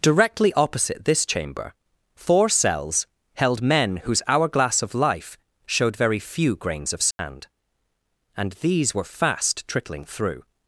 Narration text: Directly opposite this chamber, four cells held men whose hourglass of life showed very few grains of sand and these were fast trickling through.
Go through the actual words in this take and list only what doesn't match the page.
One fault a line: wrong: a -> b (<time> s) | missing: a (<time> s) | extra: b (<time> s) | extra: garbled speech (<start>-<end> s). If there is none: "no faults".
no faults